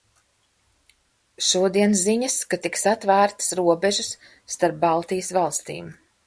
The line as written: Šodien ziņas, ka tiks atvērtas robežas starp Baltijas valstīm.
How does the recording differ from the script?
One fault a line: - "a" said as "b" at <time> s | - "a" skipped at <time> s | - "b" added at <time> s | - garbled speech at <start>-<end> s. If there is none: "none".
none